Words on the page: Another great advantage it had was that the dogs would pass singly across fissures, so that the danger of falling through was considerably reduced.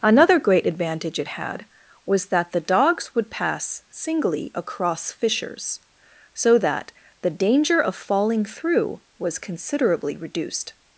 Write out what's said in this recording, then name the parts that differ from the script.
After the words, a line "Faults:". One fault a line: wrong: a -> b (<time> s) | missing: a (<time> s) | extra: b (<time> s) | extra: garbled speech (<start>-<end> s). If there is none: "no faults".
Another great advantage it had was that the dogs would pass singly across fissures, so that the danger of falling through was considerably reduced.
Faults:
no faults